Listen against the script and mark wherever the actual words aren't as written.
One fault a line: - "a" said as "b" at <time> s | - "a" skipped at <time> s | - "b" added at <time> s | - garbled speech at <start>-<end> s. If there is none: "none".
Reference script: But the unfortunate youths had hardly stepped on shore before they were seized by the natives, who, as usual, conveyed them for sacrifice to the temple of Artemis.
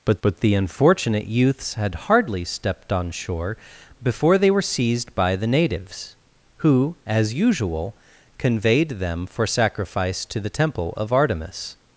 - "but" added at 0.2 s